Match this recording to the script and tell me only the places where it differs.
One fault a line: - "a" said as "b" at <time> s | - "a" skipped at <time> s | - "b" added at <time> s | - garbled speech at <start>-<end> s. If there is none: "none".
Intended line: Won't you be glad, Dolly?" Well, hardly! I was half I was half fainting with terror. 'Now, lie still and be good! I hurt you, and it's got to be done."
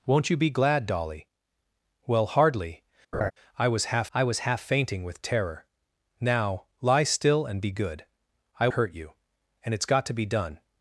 none